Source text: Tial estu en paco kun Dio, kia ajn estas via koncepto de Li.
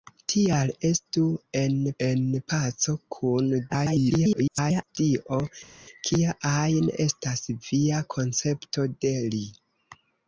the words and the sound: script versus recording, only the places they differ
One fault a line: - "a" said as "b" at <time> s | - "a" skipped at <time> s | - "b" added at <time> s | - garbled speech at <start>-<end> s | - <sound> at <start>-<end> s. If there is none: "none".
- "en" added at 2.1 s
- garbled speech at 3.7-5.0 s